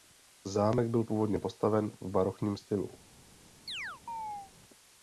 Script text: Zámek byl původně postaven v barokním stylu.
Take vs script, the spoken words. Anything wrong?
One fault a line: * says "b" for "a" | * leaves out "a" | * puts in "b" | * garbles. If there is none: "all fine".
all fine